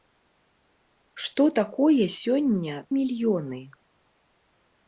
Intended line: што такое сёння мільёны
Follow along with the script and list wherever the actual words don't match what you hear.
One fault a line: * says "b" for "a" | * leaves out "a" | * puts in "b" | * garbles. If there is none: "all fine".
all fine